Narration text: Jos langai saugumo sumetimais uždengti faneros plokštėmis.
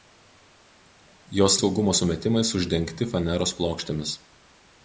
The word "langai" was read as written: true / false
false